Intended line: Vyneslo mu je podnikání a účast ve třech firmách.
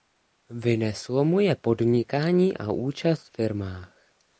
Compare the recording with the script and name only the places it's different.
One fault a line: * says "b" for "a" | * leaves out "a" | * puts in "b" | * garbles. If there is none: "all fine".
* leaves out "ve třech"